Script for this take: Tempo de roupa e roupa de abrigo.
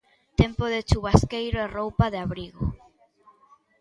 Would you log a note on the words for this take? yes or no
yes